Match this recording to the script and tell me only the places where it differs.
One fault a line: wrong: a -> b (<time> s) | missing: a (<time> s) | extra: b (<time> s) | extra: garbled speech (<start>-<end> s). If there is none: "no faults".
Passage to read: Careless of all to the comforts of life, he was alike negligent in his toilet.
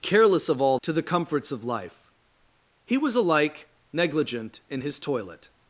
no faults